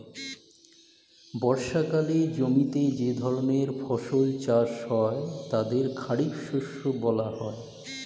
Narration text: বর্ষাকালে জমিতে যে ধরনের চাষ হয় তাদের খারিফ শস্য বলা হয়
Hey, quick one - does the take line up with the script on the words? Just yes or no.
no